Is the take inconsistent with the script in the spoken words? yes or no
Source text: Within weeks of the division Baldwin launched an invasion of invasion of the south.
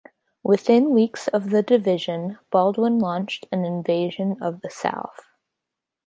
yes